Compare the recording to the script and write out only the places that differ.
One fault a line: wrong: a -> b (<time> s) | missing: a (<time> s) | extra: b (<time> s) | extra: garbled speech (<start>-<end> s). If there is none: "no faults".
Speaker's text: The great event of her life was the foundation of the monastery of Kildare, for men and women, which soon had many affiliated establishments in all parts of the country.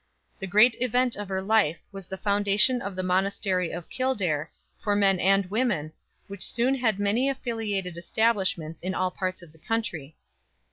no faults